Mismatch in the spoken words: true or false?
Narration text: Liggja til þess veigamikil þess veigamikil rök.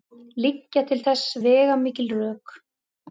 true